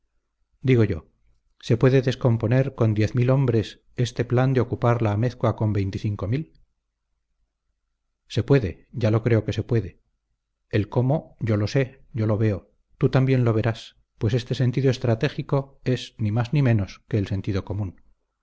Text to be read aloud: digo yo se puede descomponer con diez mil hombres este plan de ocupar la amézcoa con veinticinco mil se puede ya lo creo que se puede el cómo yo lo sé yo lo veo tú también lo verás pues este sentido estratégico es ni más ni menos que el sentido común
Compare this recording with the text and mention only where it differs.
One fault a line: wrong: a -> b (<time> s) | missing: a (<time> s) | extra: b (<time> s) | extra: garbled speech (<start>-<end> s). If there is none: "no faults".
no faults